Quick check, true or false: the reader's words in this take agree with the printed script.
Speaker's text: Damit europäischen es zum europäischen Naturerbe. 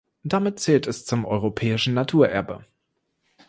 false